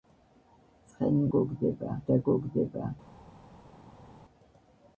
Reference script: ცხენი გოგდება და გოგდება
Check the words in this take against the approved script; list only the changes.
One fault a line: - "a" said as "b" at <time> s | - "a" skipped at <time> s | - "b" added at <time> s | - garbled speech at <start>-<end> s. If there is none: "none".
none